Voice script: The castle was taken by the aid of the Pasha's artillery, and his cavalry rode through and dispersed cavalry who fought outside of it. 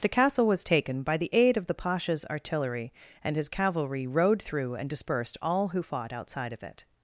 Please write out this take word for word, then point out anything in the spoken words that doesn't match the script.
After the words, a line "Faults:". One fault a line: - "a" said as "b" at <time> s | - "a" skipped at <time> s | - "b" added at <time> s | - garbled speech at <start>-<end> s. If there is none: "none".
The castle was taken by the aid of the Pasha's artillery, and his cavalry rode through and dispersed all who fought outside of it.
Faults:
- "cavalry" said as "all" at 5.4 s